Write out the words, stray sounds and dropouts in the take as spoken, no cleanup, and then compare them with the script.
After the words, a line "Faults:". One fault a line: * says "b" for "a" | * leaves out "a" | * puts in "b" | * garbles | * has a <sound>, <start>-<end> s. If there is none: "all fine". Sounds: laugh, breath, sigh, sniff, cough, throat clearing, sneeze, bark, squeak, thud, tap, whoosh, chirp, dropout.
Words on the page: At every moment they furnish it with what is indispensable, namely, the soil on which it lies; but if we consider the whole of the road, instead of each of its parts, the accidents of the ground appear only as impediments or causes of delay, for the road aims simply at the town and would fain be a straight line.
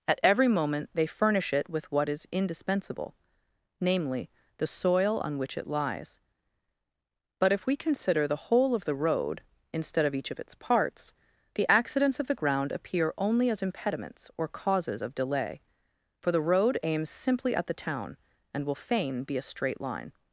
At every moment they furnish it with what is indispensable, namely, the soil on which it lies; but if we consider the whole of the road, instead of each of its parts, the accidents of the ground appear only as impediments or causes of delay, for the road aims simply at the town and will fain be a straight line.
Faults:
* says "will" for "would"